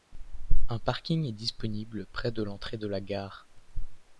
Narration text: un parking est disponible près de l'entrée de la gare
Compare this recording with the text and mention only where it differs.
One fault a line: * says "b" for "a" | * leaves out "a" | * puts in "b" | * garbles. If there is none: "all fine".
all fine